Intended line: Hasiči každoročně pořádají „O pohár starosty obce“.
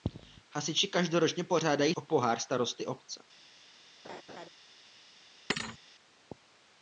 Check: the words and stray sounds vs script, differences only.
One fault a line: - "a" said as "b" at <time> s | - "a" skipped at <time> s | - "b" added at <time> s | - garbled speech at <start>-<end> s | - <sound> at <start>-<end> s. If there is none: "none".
- laugh at 4.0-4.5 s
- thud at 5.5-5.8 s